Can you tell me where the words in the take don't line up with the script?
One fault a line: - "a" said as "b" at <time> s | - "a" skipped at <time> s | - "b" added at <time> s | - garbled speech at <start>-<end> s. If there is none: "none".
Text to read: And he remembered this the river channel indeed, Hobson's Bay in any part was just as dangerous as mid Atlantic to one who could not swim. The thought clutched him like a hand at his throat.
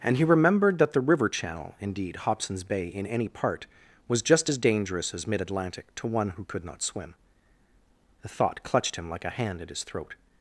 - "this" said as "that" at 0.8 s